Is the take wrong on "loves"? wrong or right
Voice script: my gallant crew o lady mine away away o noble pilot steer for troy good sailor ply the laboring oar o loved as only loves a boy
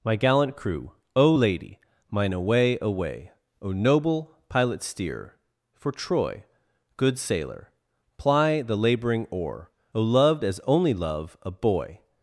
wrong